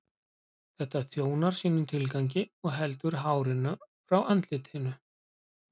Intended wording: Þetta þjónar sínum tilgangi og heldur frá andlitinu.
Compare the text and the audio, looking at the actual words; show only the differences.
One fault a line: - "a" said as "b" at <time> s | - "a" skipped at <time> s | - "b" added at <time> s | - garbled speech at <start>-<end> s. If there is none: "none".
- "hárinu" added at 3.3 s